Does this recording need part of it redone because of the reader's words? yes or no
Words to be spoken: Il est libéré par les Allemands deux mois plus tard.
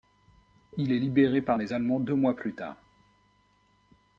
no